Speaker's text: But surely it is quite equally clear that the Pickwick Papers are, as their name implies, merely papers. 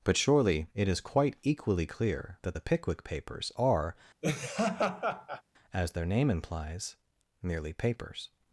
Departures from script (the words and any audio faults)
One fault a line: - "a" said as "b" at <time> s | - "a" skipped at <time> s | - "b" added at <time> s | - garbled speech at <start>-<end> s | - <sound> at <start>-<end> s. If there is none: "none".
- laugh at 4.2-5.4 s